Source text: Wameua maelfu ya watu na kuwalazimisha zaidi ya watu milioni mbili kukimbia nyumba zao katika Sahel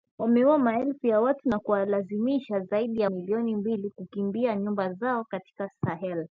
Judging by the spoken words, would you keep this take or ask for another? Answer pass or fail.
fail